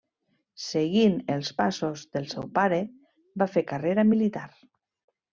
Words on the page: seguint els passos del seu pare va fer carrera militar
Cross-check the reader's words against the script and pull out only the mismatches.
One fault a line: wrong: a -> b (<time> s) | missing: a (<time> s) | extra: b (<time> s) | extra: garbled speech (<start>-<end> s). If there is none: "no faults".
no faults